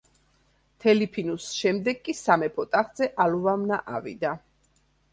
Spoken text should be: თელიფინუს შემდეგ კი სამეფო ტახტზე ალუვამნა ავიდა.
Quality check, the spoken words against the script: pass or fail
pass